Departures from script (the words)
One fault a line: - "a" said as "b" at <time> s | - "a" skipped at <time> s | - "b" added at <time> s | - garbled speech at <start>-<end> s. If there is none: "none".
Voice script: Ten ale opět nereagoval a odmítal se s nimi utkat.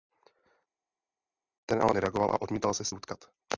- "opět" skipped at 1.9 s
- "nimi" skipped at 2.9 s